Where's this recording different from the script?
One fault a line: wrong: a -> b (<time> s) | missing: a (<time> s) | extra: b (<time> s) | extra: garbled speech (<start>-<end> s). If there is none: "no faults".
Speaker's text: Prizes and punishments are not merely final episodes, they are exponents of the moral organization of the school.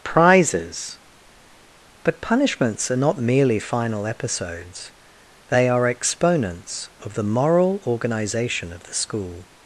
wrong: and -> but (2.0 s)